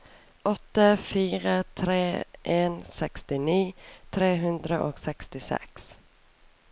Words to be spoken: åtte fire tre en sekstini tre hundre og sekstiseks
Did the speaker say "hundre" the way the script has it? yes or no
yes